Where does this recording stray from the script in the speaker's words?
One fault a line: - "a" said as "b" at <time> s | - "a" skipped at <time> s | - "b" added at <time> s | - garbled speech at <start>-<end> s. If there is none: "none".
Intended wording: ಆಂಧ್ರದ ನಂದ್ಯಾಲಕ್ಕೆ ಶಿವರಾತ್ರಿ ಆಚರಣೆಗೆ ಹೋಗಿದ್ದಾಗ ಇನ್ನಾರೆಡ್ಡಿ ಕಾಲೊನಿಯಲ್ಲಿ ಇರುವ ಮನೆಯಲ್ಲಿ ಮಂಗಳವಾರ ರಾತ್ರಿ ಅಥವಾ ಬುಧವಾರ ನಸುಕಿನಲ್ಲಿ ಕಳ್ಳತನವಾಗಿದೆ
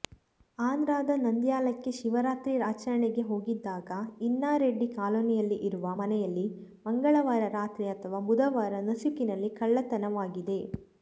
none